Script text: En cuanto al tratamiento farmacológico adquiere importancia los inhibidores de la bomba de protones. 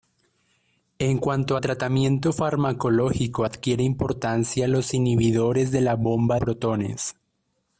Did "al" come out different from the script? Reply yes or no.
yes